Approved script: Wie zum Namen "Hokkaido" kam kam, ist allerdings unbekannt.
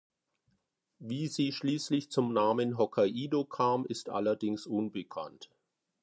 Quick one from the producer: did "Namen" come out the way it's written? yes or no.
yes